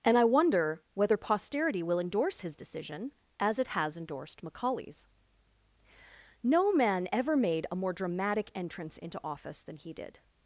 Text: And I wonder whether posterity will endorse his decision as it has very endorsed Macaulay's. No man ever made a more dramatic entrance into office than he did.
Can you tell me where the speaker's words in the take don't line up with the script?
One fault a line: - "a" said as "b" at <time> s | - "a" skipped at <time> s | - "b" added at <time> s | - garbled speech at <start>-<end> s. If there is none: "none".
- "very" skipped at 4.0 s